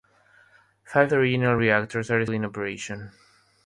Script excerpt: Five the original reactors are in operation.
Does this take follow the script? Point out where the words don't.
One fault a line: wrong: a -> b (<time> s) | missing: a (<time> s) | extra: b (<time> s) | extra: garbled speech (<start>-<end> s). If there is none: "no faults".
no faults